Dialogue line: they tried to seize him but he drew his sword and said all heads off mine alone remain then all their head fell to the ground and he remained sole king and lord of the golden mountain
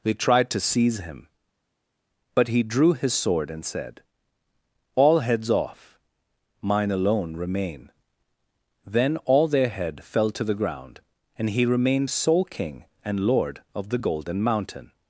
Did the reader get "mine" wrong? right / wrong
right